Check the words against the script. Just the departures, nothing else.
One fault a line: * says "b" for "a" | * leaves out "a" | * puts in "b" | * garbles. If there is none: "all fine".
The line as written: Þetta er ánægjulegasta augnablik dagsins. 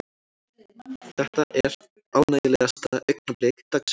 all fine